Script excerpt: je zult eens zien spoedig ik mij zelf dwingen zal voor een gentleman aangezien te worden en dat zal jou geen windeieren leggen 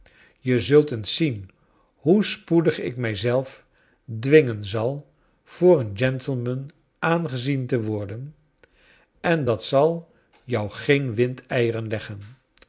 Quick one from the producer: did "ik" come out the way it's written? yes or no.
yes